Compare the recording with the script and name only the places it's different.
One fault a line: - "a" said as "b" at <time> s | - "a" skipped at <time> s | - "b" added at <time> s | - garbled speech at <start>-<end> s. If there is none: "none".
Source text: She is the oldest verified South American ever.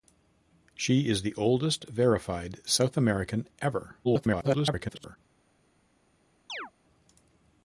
- garbled speech at 4.0-5.2 s